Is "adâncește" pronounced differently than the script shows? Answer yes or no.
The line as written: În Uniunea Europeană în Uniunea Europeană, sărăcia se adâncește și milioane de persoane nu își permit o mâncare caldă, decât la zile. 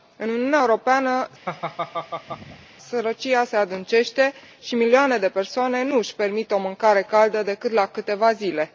no